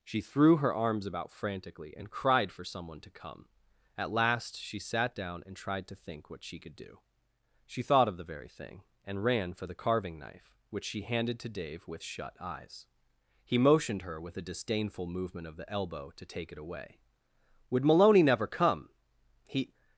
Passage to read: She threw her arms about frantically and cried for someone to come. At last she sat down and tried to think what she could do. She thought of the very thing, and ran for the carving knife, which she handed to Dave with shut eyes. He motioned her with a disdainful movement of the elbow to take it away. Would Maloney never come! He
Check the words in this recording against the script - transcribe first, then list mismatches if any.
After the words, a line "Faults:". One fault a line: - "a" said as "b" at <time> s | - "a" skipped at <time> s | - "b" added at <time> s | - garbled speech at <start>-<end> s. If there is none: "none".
She threw her arms about frantically and cried for someone to come. At last she sat down and tried to think what she could do. She thought of the very thing, and ran for the carving knife, which she handed to Dave with shut eyes. He motioned her with a disdainful movement of the elbow to take it away. Would Maloney never come! He
Faults:
none